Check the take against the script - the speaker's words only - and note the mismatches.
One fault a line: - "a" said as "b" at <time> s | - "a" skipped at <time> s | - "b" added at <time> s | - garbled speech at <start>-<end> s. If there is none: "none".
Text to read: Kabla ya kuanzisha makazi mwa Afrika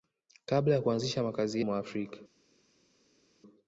none